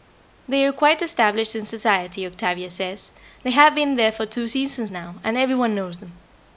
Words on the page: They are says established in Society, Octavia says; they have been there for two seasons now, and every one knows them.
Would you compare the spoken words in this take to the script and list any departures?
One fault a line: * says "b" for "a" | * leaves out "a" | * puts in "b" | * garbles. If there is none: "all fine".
* says "quite" for "says"